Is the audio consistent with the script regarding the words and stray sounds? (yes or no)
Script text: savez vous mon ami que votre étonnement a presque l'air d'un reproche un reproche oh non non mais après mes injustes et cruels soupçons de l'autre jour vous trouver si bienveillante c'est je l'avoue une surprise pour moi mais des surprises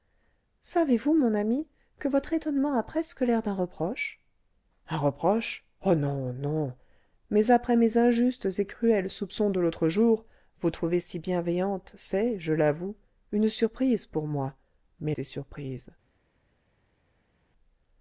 yes